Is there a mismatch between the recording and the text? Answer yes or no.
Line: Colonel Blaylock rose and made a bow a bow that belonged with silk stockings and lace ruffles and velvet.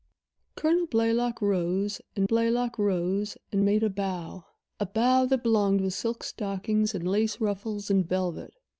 yes